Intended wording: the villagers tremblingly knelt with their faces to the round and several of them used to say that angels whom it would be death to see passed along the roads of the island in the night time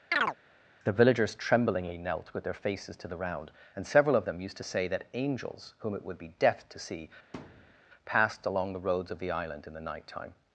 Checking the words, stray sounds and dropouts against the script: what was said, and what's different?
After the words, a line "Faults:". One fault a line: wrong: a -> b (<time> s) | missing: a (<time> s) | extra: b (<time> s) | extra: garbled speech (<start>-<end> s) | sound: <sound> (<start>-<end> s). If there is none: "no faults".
the villagers tremblingly knelt with their faces to the round and several of them used to say that angels whom it would be death to see passed along the roads of the island in the night time
Faults:
sound: chirp (0.1-0.4 s)
sound: thud (7.3-7.8 s)